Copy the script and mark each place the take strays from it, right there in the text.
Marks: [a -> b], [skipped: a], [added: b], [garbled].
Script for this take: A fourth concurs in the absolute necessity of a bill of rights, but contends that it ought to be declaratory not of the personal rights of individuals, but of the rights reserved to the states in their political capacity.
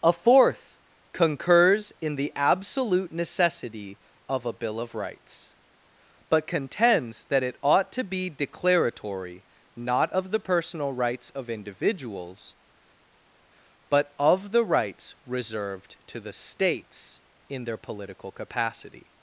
A fourth concurs in the absolute necessity of a bill of rights, but contends that it ought to be declaratory not of the personal rights of individuals, but of the rights reserved to the states in their political capacity.